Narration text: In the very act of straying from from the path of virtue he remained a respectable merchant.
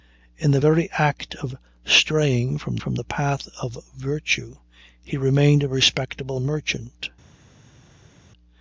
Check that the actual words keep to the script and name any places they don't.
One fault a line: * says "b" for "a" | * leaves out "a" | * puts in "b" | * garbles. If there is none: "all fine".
all fine